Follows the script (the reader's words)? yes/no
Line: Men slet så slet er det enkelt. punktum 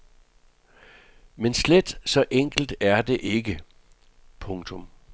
no